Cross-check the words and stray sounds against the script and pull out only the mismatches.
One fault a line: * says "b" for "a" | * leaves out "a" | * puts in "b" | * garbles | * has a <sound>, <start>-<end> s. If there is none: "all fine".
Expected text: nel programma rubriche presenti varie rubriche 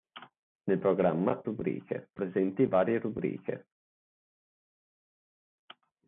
all fine